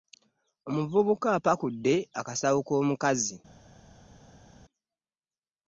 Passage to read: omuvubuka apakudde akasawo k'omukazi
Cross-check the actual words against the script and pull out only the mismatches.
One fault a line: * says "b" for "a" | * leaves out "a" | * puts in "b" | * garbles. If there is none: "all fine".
all fine